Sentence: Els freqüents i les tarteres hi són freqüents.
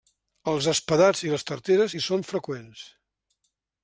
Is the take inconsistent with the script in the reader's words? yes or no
yes